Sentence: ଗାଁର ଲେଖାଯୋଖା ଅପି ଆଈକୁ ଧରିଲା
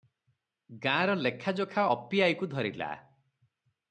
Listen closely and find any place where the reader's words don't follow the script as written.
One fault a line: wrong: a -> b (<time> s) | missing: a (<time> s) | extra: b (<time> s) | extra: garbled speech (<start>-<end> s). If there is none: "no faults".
no faults